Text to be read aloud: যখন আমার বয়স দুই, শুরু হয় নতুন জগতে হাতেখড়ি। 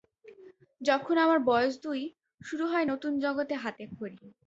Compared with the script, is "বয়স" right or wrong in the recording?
right